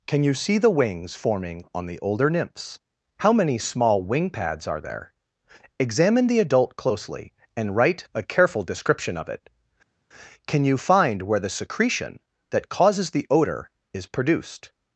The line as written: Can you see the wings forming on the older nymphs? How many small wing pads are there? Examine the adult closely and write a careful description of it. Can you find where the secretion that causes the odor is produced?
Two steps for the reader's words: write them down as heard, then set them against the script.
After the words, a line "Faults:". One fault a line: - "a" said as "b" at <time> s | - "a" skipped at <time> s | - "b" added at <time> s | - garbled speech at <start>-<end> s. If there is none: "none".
Can you see the wings forming on the older nymphs? How many small wing pads are there? Examine the adult closely and write a careful description of it. Can you find where the secretion that causes the odor is produced?
Faults:
none